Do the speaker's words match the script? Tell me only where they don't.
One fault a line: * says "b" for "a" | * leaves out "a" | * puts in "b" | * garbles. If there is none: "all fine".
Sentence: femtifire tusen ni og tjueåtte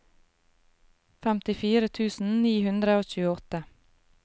* puts in "hundre"